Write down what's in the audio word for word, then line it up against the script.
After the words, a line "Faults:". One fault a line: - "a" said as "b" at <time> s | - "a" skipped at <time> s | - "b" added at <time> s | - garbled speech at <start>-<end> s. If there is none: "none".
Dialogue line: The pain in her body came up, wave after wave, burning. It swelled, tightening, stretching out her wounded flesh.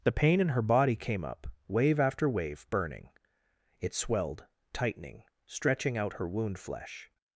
The pain in her body came up, wave after wave, burning. It swelled, tightening, stretching out her wound flesh.
Faults:
- "wounded" said as "wound" at 6.3 s